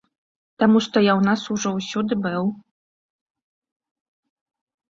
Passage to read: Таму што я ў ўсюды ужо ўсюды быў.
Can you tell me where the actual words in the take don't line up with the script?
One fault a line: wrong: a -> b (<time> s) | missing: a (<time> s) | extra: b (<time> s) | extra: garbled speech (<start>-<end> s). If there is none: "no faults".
wrong: ўсюды -> нас (1.3 s)